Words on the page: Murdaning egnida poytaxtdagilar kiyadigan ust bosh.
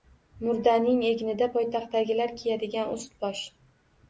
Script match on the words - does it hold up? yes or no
yes